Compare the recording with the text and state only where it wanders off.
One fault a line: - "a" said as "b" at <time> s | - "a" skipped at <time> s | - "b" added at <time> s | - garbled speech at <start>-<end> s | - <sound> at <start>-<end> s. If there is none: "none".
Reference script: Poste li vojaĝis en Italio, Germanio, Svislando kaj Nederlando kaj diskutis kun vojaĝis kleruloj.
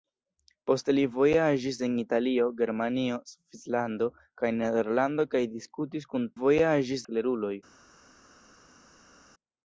none